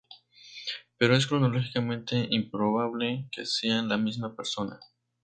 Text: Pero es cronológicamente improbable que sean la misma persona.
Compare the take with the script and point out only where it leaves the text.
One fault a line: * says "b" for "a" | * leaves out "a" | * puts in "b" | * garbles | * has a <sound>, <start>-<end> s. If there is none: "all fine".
all fine